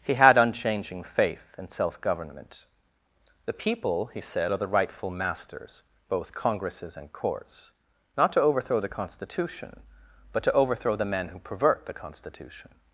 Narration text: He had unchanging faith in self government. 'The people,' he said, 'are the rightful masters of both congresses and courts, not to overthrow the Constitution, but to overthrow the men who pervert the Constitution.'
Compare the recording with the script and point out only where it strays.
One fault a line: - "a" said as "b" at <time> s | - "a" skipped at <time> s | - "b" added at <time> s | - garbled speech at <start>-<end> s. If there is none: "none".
- "of" skipped at 5.8 s